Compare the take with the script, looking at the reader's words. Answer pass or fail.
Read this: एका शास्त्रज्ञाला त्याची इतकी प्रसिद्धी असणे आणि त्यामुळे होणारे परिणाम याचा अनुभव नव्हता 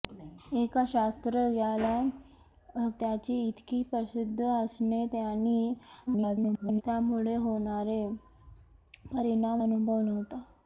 fail